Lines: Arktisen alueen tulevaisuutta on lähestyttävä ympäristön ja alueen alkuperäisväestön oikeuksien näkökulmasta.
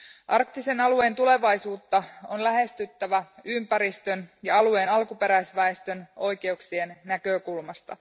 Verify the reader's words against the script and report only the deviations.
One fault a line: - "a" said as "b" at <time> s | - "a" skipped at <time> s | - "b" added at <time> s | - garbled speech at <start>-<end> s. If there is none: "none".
none